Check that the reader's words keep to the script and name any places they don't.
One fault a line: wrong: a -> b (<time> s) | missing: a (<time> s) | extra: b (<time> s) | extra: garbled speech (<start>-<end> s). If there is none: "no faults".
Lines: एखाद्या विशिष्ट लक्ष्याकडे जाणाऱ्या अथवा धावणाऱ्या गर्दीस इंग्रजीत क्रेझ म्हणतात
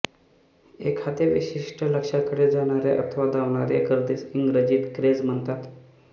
no faults